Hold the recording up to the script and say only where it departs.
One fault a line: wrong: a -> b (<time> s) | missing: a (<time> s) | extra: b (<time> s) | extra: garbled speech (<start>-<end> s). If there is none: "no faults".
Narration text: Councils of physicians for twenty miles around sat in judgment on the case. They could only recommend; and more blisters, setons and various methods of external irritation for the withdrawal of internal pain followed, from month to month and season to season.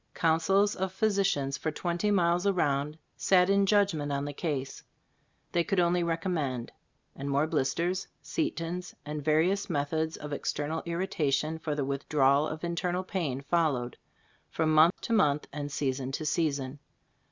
no faults